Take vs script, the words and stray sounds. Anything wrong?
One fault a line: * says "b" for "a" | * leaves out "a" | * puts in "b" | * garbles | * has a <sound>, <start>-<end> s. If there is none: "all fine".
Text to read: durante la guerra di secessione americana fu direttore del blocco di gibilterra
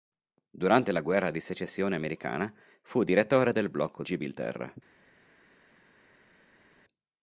* leaves out "di"